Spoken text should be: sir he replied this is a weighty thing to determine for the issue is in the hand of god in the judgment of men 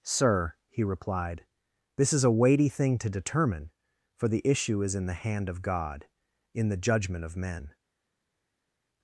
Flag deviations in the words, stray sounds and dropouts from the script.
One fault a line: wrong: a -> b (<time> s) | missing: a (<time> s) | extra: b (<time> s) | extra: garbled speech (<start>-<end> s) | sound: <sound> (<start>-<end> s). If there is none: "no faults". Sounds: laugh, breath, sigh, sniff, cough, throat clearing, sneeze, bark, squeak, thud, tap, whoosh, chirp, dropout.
no faults